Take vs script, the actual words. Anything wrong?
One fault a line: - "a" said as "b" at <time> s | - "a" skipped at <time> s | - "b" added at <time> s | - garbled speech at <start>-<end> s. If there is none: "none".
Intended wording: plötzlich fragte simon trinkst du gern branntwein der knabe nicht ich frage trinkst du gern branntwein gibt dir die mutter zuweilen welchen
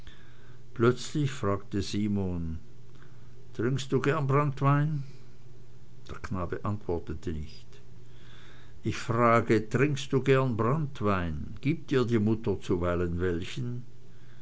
- "antwortete" added at 6.7 s